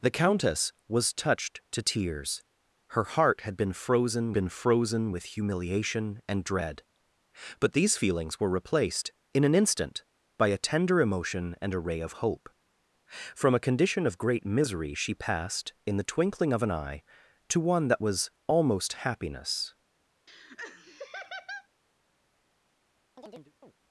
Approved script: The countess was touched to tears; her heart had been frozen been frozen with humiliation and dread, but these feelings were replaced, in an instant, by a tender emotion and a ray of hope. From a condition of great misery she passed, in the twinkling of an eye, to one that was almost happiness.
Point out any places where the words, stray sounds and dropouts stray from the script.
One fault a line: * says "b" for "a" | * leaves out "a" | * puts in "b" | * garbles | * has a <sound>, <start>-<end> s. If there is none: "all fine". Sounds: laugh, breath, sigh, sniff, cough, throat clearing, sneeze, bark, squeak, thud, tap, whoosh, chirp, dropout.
* has a laugh, 20.3-21.7 s
* has a chirp, 23.2-23.7 s